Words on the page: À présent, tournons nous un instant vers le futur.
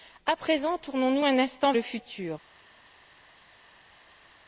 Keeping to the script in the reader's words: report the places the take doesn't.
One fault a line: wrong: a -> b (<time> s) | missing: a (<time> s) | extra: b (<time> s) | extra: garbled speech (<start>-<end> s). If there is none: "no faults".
missing: vers (1.7 s)